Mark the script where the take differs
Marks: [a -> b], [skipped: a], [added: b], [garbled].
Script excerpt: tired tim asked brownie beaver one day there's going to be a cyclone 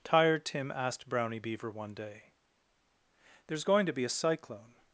tired tim asked brownie beaver one day there's going to be a cyclone